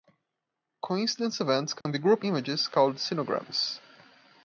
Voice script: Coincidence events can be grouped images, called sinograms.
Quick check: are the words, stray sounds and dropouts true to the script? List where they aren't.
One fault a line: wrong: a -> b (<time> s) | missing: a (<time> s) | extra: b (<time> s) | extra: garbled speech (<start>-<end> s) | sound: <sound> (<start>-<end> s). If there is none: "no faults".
sound: dropout (1.8-1.9 s)